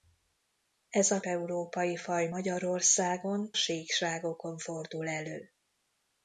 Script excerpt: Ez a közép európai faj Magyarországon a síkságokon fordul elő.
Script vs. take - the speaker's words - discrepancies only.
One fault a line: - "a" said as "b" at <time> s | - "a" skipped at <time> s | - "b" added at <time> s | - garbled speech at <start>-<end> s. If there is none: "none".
- "közép" skipped at 1.2 s
- "a" skipped at 3.5 s